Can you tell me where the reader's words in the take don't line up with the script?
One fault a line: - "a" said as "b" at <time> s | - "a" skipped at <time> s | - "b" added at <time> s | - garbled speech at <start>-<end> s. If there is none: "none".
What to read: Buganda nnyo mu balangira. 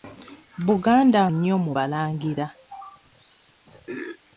none